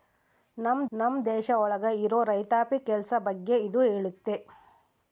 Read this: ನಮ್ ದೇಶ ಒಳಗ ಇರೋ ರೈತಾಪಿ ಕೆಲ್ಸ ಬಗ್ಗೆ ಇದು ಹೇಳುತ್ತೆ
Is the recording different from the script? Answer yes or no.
yes